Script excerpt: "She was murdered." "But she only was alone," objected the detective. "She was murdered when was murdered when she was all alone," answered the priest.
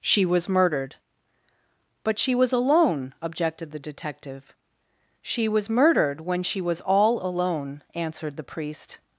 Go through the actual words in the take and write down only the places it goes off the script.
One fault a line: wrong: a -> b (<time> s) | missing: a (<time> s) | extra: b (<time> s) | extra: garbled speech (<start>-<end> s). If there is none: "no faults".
missing: only (2.3 s)
missing: was murdered when (6.4 s)